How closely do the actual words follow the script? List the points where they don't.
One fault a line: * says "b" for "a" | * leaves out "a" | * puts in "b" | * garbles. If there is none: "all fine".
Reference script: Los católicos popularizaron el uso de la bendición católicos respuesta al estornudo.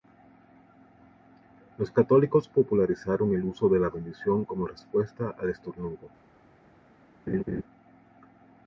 * says "como" for "católicos"